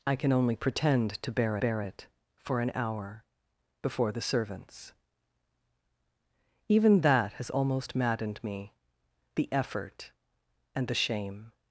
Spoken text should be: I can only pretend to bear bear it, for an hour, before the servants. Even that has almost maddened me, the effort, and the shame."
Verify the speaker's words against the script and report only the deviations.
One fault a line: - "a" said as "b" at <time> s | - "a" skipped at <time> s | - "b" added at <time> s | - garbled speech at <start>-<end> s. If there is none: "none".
none